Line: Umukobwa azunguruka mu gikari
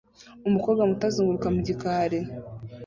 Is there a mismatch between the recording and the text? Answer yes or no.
yes